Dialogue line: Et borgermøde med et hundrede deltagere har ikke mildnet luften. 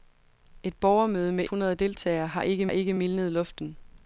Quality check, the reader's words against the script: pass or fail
fail